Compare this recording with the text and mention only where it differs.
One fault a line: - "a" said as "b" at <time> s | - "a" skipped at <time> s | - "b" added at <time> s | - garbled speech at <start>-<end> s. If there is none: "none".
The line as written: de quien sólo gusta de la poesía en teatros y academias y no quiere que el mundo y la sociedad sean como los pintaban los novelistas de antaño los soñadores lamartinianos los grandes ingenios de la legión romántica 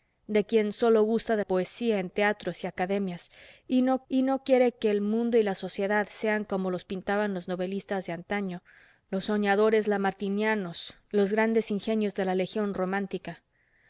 - "la" skipped at 1.4 s
- "y no" added at 4.1 s